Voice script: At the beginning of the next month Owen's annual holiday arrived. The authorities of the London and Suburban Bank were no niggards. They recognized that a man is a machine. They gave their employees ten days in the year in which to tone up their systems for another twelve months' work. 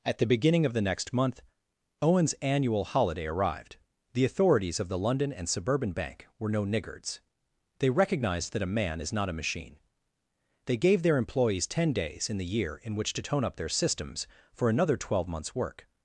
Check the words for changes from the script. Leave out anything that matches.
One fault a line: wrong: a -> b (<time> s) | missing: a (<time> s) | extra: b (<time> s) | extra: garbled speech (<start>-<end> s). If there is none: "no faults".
extra: not (9.1 s)